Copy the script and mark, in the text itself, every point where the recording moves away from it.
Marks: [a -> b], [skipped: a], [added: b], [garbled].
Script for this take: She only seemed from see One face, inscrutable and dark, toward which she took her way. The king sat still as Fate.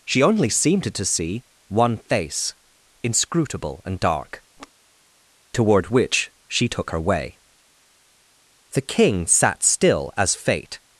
She only seemed [from -> to] see One face, inscrutable and dark, toward which she took her way. The king sat still as Fate.